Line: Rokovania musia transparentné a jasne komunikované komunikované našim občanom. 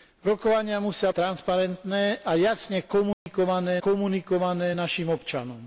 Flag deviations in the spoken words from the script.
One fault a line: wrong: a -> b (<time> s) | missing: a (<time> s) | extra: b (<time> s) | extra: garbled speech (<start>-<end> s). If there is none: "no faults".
no faults